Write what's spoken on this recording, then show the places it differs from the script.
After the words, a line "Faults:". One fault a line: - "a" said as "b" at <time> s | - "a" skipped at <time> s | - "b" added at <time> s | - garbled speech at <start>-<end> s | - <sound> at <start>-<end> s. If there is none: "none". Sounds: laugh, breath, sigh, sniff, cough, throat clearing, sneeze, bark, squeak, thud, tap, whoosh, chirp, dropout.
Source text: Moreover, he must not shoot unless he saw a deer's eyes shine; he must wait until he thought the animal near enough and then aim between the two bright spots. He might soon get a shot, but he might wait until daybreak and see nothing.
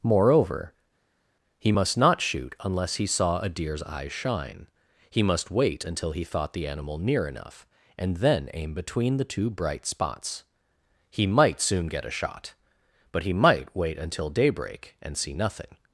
Moreover, he must not shoot unless he saw a deer's eyes shine; he must wait until he thought the animal near enough and then aim between the two bright spots. He might soon get a shot, but he might wait until daybreak and see nothing.
Faults:
none